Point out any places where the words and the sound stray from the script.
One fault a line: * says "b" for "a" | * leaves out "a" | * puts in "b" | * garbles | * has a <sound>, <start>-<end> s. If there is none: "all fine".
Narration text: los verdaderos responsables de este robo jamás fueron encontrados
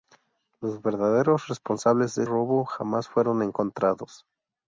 * leaves out "este"